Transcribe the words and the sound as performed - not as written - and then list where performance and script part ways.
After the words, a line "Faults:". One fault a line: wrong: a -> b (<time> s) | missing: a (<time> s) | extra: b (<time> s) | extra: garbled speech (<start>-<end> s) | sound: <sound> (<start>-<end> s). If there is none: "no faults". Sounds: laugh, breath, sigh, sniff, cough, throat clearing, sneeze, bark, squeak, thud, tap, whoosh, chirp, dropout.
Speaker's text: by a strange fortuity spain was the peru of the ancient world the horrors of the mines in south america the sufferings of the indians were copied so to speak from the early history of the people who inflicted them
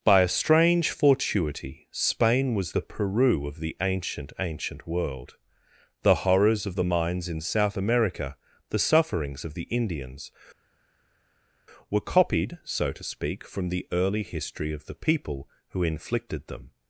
by a strange fortuity spain was the peru of the ancient ancient world the horrors of the mines in south america the sufferings of the indians were copied so to speak from the early history of the people who inflicted them
Faults:
extra: ancient (4.4 s)